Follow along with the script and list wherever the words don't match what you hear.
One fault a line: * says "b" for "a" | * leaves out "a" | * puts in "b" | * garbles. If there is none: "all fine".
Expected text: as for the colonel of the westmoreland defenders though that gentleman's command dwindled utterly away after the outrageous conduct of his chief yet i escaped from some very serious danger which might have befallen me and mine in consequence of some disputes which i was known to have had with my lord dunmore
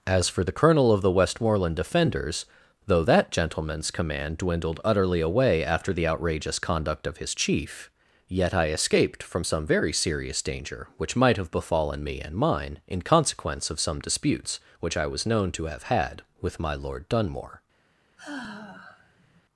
all fine